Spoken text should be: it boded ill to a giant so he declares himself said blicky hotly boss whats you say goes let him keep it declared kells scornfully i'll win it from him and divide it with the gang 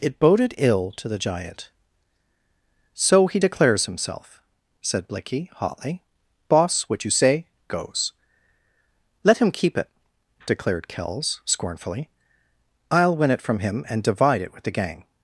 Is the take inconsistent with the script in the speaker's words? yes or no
yes